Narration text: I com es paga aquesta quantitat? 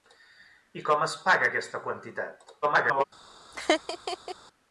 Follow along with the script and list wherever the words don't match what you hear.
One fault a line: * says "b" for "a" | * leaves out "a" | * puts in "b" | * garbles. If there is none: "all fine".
* garbles